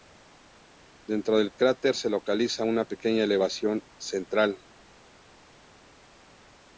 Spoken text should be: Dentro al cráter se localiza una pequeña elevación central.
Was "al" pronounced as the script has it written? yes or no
no